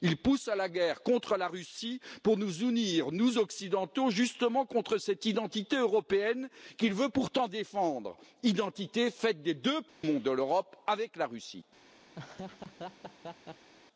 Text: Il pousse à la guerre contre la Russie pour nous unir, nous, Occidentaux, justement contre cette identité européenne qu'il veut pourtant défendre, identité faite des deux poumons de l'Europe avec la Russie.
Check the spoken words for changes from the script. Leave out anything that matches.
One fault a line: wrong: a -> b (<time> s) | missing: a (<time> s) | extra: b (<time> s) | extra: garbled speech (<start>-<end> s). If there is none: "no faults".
no faults